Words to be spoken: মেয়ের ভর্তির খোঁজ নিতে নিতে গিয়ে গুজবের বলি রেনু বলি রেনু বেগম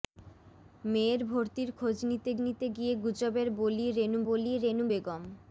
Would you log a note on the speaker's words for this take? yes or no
no